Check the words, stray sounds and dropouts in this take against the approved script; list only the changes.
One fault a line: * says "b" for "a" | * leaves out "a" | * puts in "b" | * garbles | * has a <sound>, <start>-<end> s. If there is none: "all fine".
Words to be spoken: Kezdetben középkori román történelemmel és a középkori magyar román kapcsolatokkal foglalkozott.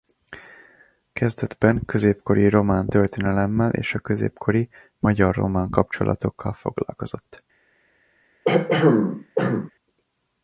* has a throat clearing, 8.5-9.7 s